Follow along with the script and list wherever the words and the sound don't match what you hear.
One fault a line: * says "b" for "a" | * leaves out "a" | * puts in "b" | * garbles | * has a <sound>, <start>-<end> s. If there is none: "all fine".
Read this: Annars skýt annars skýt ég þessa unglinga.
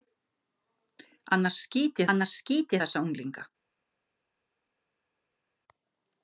all fine